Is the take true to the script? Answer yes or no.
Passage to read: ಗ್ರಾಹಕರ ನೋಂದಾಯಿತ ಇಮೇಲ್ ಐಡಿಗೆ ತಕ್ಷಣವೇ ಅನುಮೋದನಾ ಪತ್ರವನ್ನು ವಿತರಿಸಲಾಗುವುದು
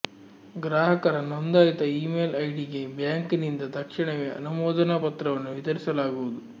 no